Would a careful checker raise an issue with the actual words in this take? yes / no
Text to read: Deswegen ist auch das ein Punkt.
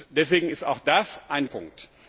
no